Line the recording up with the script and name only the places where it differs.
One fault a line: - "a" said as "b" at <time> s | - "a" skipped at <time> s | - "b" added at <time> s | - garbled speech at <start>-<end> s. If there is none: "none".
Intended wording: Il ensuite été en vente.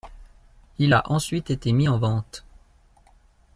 - "a" added at 0.9 s
- "mis" added at 1.7 s